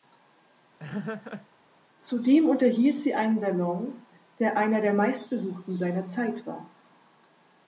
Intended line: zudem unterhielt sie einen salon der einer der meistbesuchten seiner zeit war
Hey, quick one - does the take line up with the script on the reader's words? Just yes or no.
yes